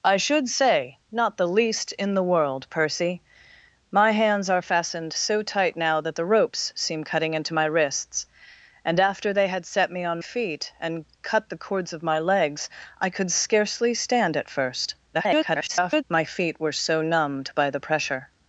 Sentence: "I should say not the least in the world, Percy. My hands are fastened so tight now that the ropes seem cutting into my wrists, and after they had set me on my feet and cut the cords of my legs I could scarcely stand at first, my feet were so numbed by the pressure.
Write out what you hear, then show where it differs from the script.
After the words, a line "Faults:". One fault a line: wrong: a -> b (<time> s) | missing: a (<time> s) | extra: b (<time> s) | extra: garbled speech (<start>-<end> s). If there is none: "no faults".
"I should say not the least in the world, Percy. My hands are fastened so tight now that the ropes seem cutting into my wrists, and after they had set me on feet and cut the cords of my legs I could scarcely stand at first, [garbled] my feet were so numbed by the pressure.
Faults:
missing: my (10.2 s)
extra: garbled speech (15.1-16.0 s)